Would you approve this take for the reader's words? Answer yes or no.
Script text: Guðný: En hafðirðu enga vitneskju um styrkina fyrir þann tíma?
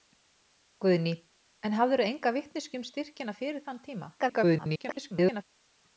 no